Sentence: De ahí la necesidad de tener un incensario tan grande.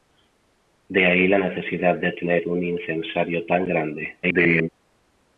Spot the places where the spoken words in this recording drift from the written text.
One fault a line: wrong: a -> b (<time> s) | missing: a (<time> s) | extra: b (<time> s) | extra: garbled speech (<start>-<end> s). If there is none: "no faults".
extra: garbled speech (4.2-4.7 s)